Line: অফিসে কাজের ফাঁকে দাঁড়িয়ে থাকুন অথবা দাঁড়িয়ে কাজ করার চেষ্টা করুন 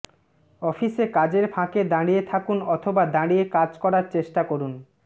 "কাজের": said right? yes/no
yes